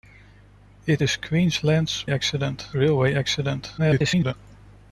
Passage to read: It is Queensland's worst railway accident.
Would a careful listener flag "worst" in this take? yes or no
yes